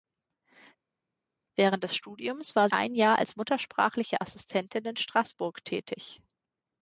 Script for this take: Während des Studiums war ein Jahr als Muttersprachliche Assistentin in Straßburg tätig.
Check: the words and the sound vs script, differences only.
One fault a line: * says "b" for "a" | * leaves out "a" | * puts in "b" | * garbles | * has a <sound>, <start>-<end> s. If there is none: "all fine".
all fine